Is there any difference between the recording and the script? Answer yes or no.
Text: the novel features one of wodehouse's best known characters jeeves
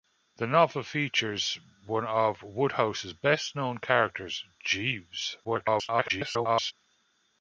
yes